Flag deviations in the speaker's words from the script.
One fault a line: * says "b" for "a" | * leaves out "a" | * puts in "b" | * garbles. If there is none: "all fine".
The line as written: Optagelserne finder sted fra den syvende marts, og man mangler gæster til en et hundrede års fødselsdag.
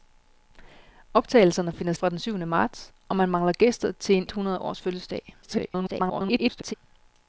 * leaves out "sted"
* leaves out "et"
* garbles